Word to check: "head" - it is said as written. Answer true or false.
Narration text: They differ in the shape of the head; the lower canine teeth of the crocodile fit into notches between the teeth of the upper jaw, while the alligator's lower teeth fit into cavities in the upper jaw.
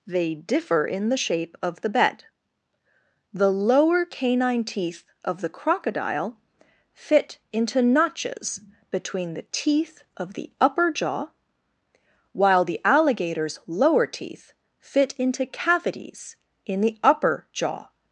false